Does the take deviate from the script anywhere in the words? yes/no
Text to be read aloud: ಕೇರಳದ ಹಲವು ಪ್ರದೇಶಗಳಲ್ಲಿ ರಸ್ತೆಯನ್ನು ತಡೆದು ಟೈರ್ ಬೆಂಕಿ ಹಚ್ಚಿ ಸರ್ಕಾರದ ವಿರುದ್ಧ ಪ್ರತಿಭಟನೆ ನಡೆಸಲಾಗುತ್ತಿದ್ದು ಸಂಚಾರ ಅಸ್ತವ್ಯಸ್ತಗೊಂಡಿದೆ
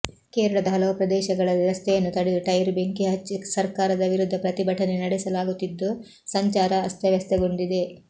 no